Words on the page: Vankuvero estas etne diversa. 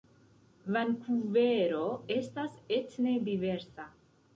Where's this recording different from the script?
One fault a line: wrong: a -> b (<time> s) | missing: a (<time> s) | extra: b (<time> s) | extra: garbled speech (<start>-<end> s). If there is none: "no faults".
no faults